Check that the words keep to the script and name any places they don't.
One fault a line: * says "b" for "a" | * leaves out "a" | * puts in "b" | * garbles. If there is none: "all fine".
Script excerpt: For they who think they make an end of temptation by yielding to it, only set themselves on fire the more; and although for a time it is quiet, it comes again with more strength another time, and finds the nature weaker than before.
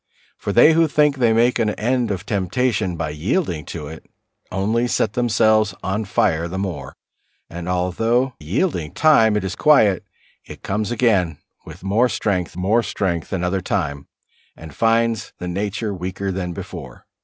* says "yielding" for "for"
* puts in "more strength"